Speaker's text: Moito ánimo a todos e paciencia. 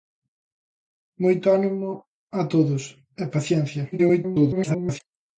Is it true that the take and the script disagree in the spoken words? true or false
true